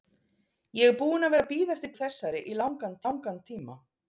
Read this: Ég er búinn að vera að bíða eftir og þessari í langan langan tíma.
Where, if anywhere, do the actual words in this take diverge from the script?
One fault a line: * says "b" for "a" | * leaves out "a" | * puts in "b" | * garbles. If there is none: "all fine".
all fine